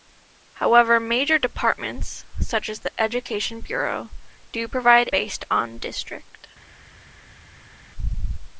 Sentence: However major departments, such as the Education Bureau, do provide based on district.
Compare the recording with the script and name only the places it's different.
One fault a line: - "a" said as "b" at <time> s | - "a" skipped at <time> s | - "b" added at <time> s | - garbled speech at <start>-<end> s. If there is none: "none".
none